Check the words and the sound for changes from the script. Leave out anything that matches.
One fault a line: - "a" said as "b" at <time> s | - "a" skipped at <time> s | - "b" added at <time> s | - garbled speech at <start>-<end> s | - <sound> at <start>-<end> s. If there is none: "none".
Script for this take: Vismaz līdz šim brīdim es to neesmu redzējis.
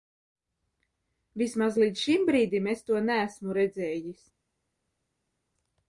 none